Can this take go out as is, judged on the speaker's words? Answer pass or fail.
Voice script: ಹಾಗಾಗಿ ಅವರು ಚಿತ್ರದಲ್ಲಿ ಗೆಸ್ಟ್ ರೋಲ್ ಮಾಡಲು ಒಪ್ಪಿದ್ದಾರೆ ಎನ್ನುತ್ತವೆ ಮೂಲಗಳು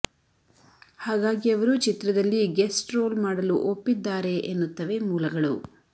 pass